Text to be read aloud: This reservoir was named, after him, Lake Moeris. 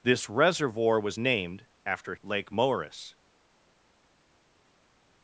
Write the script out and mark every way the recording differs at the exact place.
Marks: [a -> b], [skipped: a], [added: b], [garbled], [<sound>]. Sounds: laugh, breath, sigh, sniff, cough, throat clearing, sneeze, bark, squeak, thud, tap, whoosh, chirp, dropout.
This reservoir was named, after [skipped: him,] Lake Moeris.